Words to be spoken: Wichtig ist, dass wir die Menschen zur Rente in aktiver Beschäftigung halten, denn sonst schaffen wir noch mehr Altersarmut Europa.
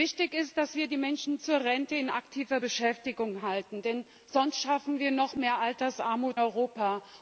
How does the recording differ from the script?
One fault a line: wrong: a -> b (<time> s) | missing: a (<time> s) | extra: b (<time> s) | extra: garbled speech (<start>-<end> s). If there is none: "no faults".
no faults